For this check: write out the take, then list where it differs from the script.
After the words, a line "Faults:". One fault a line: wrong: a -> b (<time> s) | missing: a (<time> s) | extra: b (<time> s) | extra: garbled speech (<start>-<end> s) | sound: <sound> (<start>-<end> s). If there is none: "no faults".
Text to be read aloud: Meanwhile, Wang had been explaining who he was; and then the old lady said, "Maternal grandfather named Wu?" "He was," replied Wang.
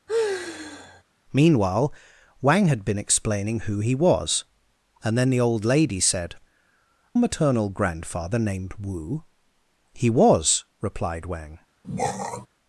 Meanwhile, Wang had been explaining who he was; and then the old lady said, "Maternal grandfather named Wu?" "He was," replied Wang.
Faults:
sound: sigh (0.1-1.0 s)
sound: throat clearing (11.8-12.5 s)